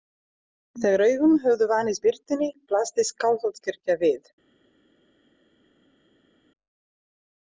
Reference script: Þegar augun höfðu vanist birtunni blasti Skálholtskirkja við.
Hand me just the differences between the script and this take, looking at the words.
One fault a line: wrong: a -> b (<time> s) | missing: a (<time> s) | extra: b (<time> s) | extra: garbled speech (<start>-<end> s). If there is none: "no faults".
no faults